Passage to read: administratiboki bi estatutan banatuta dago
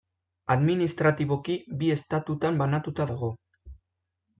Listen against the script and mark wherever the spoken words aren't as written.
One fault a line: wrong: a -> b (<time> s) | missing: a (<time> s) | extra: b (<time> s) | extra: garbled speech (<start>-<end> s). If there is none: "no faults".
no faults